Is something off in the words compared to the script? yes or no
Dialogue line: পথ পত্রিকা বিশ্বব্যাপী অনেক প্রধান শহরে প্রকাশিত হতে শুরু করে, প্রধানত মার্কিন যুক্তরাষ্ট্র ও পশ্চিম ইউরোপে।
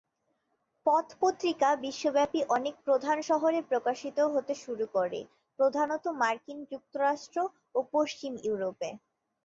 no